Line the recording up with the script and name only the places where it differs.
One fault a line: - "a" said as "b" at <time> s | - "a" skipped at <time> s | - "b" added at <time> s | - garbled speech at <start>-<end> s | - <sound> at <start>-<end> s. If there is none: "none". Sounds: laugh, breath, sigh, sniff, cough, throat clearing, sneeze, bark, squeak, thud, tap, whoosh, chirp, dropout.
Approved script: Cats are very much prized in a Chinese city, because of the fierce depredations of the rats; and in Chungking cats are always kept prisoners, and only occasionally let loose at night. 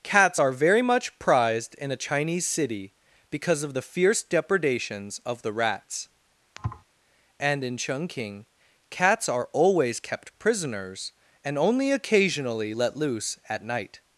- thud at 6.6-6.8 s